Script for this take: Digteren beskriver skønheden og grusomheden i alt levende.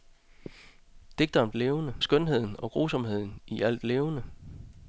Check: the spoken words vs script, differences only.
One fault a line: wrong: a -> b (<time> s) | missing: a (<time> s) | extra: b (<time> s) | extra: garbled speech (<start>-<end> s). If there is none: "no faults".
wrong: beskriver -> levende (1.5 s)